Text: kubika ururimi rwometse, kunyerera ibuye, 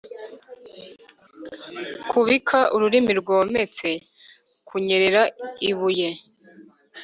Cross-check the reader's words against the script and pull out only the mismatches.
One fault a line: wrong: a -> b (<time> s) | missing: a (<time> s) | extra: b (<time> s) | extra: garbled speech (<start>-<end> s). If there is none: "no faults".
no faults